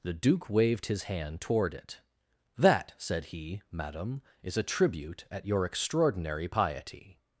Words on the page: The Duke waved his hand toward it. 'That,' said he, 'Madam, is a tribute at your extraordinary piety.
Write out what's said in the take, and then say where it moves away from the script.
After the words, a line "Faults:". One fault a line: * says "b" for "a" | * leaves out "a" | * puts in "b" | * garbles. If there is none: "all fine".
The Duke waved his hand toward it. 'That,' said he, 'Madam, is a tribute at your extraordinary piety.
Faults:
all fine